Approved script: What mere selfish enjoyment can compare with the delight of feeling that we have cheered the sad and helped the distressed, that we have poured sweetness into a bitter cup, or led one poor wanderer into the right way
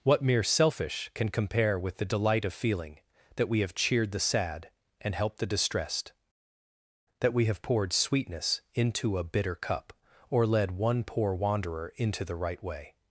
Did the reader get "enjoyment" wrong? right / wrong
wrong